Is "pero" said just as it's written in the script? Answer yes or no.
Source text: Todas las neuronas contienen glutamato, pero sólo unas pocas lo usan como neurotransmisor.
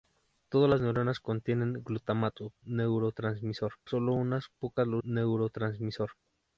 no